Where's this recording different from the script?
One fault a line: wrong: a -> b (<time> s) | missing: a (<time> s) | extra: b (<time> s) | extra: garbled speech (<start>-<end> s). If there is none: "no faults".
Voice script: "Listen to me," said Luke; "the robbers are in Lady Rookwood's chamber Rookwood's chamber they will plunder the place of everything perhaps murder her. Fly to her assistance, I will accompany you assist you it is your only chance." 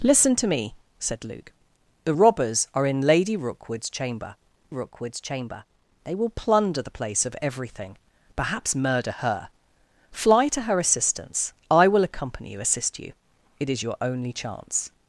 no faults